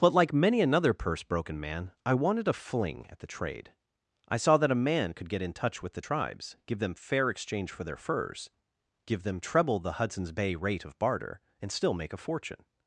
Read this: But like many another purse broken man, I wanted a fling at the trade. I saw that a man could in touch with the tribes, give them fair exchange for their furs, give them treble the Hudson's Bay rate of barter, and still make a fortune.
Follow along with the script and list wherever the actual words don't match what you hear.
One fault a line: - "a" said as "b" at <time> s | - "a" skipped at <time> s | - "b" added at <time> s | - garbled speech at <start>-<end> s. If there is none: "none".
- "get" added at 5.3 s